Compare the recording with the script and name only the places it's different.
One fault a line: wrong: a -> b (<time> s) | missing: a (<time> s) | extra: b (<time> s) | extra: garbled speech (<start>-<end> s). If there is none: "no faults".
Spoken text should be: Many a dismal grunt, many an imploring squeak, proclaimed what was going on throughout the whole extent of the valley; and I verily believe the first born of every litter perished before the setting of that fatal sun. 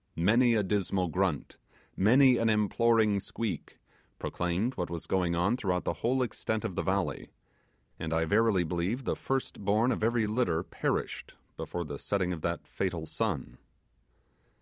no faults